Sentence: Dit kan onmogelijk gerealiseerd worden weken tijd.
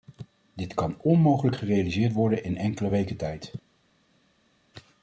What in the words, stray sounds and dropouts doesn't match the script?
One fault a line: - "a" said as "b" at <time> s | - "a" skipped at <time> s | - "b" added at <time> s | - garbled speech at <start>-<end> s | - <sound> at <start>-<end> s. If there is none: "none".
- "in enkele" added at 2.4 s